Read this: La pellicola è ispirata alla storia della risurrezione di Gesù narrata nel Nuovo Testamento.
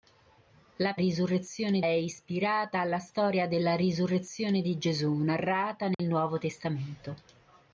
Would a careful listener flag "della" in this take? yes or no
no